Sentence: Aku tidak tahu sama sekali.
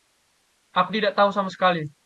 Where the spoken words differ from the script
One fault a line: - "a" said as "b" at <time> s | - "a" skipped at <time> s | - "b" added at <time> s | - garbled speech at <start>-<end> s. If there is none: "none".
none